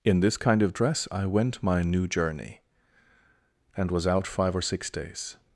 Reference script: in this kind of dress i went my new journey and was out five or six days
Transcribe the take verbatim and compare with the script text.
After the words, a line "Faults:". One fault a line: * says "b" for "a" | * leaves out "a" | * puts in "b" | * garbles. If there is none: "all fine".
in this kind of dress i went my new journey and was out five or six days
Faults:
all fine